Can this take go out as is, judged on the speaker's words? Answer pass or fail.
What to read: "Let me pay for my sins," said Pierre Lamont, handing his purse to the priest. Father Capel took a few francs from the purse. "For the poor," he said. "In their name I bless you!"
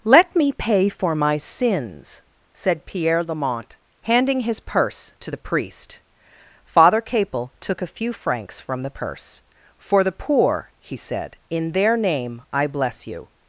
pass